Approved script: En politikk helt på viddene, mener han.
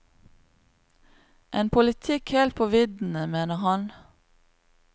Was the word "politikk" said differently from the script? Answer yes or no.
no